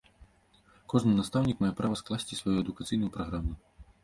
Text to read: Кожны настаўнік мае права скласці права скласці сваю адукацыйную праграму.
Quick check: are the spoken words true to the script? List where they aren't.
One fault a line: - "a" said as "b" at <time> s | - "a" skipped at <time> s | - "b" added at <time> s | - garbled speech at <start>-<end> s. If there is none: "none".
- "права скласці" skipped at 2.4 s